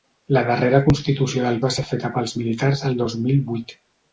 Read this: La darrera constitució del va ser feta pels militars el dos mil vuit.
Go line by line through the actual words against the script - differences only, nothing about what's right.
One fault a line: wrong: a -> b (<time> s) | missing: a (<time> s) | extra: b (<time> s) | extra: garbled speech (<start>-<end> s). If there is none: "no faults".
no faults